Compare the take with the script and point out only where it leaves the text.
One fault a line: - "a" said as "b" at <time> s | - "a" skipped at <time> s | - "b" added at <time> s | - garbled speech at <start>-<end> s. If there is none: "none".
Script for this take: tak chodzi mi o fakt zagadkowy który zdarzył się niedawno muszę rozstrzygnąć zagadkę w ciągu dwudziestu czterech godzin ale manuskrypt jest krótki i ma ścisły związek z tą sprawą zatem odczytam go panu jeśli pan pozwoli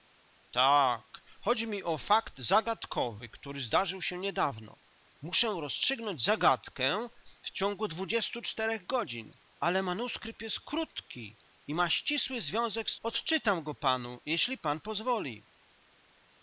- "tą sprawą zatem" skipped at 13.0 s